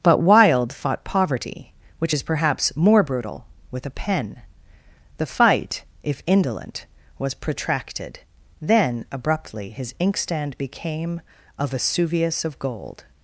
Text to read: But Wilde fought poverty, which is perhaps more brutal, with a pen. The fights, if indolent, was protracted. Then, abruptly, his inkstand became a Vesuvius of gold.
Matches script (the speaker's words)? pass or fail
fail